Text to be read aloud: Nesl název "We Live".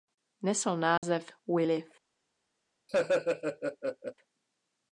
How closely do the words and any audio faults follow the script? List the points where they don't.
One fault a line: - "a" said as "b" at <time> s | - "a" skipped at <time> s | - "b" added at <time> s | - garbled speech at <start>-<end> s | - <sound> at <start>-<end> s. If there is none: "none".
- dropout at 1.0-1.0 s
- laugh at 2.9-4.1 s